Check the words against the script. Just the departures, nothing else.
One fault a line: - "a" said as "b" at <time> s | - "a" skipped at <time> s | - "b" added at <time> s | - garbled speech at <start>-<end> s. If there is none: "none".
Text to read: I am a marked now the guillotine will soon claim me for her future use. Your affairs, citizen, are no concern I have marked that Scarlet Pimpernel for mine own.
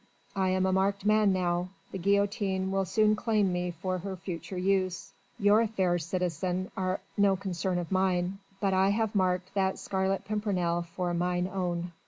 - "man" added at 1.1 s
- "of mine but" added at 7.8 s